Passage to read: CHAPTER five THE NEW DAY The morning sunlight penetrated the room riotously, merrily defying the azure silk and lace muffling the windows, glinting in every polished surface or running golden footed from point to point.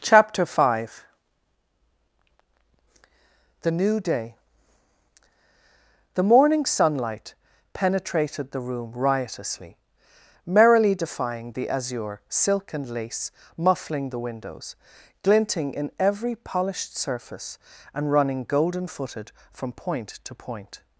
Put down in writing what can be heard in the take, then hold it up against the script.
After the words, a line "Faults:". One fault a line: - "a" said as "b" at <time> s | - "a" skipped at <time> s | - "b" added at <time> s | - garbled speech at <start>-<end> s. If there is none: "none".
CHAPTER five THE NEW DAY The morning sunlight penetrated the room riotously, merrily defying the azure silk and lace muffling the windows, glinting in every polished surface and running golden footed from point to point.
Faults:
- "or" said as "and" at 17.9 s